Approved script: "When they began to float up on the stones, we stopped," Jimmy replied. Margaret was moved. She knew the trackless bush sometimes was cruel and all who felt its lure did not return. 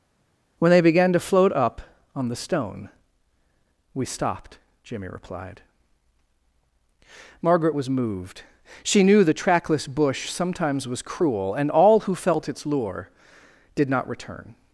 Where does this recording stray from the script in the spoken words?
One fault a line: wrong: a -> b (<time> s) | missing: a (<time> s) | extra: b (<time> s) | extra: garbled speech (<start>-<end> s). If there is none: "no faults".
wrong: stones -> stone (2.3 s)